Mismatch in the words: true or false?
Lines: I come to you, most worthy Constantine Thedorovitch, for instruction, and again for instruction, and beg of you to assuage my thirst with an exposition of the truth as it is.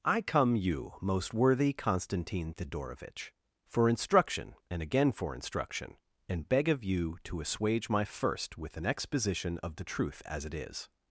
true